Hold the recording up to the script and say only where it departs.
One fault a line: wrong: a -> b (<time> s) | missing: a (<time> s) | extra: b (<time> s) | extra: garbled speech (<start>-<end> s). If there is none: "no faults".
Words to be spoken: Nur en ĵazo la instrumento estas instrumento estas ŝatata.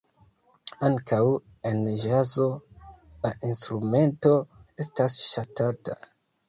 wrong: Nur -> Ankaŭ (0.9 s)
missing: instrumento estas (5.2 s)